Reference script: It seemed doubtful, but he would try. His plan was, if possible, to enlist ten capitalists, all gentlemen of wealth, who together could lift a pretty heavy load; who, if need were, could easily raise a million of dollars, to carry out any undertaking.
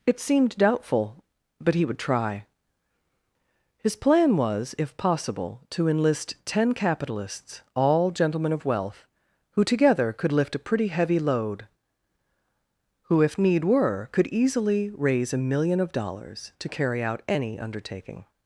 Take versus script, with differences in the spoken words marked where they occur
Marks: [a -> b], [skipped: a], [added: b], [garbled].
It seemed doubtful, but he would try. His plan was, if possible, to enlist ten capitalists, all gentlemen of wealth, who together could lift a pretty heavy load; who, if need were, could easily raise a million of dollars, to carry out any undertaking.